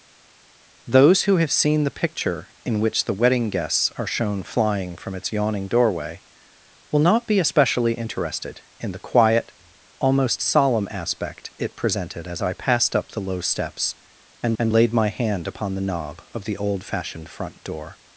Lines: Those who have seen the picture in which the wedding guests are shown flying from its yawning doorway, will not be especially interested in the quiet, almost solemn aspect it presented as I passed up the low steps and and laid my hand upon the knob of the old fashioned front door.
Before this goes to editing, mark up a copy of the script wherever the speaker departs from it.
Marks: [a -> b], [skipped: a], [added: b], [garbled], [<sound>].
Those who have seen the picture in which the wedding guests are shown flying from its yawning doorway, will not be especially interested in the quiet, almost solemn aspect it presented as I passed up the low steps and and laid my hand upon the knob of the old fashioned front door.